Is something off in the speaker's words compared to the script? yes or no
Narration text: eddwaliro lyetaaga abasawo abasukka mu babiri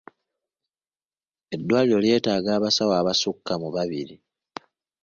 no